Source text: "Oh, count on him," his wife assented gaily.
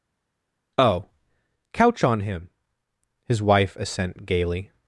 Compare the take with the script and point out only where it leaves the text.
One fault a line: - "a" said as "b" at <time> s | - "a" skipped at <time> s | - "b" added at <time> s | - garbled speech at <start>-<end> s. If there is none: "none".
- "count" said as "couch" at 1.7 s
- "assented" said as "assent" at 3.8 s